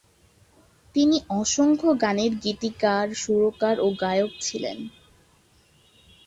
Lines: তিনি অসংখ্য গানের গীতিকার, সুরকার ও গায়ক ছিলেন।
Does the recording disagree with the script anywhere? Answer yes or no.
no